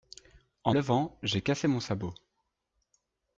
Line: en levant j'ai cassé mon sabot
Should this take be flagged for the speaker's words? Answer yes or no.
no